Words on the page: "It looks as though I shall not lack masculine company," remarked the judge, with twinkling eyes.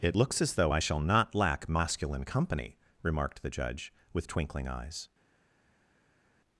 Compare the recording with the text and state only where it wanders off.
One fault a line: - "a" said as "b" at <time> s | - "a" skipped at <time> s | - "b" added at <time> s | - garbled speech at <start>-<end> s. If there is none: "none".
none